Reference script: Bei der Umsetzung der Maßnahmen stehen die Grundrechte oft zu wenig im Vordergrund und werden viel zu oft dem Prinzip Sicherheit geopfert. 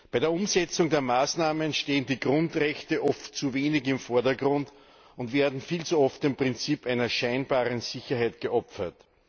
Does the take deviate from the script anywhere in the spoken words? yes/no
yes